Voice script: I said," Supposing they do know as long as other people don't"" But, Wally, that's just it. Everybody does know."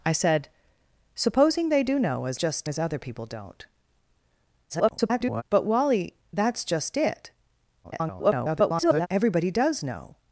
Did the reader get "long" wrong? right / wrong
wrong